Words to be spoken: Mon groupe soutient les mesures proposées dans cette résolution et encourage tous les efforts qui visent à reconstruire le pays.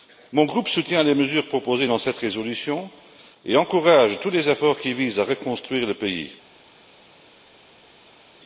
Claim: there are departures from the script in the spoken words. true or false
false